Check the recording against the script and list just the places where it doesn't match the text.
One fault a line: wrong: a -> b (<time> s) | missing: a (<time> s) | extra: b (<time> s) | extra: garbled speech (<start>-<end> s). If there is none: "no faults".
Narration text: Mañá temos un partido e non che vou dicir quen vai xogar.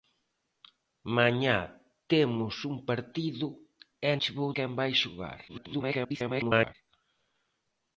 missing: non (4.1 s)
missing: dicir (4.5 s)
extra: garbled speech (5.5-6.7 s)